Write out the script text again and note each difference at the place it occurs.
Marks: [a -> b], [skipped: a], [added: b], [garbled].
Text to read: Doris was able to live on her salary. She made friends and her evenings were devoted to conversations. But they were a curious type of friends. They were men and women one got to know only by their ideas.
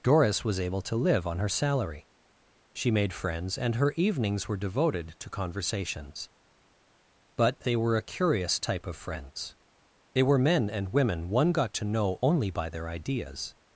Doris was able to live on her salary. She made friends and her evenings were devoted to conversations. But they were a curious type of friends. They were men and women one got to know only by their ideas.